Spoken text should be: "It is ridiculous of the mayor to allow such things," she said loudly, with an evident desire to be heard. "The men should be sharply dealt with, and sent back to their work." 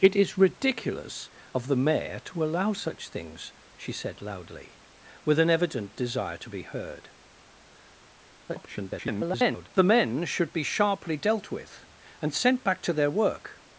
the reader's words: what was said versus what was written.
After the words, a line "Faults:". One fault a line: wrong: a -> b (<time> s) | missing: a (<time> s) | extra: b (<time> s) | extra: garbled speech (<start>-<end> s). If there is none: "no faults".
"It is ridiculous of the mayor to allow such things," she said loudly, with an evident desire to be heard. [garbled] "The men should be sharply dealt with, and sent back to their work."
Faults:
extra: garbled speech (8.5-9.7 s)